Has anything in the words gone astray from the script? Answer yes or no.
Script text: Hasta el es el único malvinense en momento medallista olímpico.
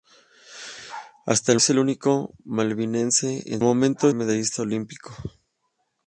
no